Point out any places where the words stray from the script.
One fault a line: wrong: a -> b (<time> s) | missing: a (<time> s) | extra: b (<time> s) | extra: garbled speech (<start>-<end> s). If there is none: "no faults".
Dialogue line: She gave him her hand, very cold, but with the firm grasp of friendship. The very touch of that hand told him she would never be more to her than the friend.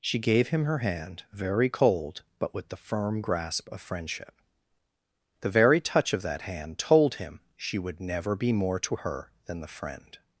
no faults